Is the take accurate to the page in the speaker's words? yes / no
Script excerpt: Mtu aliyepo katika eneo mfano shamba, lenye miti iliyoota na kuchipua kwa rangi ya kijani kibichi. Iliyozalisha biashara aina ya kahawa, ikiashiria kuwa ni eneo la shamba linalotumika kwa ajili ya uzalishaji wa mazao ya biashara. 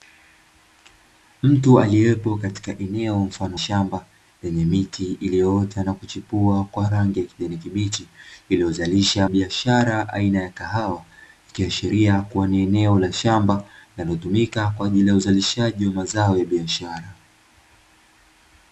yes